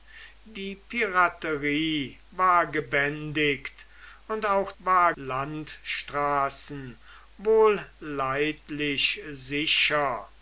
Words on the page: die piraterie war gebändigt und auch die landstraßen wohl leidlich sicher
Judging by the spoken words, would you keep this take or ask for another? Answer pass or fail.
fail